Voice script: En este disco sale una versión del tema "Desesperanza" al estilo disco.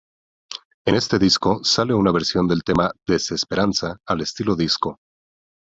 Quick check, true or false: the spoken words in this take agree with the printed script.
true